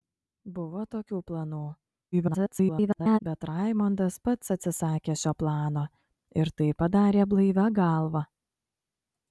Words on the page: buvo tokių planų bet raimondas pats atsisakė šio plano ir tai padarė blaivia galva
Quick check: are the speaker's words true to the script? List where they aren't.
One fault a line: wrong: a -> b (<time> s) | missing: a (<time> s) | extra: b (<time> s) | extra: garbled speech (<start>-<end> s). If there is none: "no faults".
extra: garbled speech (2.1-3.2 s)